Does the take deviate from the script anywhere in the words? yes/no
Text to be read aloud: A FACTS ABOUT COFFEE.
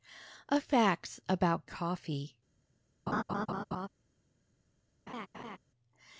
no